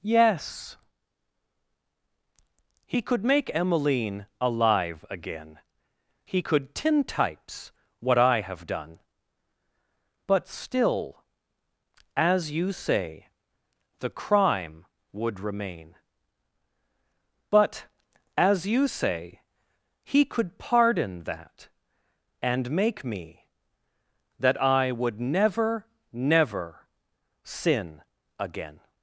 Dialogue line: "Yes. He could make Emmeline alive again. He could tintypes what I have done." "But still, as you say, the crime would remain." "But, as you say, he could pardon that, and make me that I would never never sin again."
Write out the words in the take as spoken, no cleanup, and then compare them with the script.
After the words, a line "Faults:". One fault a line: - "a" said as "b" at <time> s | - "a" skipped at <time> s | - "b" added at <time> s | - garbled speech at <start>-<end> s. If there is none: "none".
"Yes. He could make Emmeline alive again. He could tintypes what I have done." "But still, as you say, the crime would remain." "But, as you say, he could pardon that, and make me that I would never never sin again."
Faults:
none